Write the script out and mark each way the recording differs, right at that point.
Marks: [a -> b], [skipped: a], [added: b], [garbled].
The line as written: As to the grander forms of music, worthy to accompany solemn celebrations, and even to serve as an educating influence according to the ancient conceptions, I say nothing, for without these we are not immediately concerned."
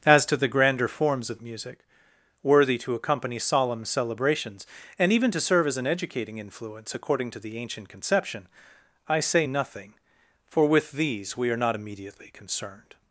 As to the grander forms of music, worthy to accompany solemn celebrations, and even to serve as an educating influence according to the ancient [conceptions, -> conception] I say nothing, for [without -> with] these we are not immediately concerned."